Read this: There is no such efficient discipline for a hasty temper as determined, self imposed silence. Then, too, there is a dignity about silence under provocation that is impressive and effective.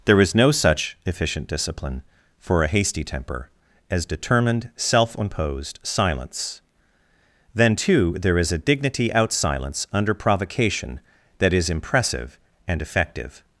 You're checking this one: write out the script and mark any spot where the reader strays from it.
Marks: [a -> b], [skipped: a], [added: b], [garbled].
There is no such efficient discipline for a hasty temper as determined, self imposed silence. Then, too, there is a dignity [about -> out] silence under provocation that is impressive and effective.